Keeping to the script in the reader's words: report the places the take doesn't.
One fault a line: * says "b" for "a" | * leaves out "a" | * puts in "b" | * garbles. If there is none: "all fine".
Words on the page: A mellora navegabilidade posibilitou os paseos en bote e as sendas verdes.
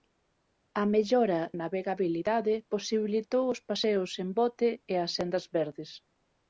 all fine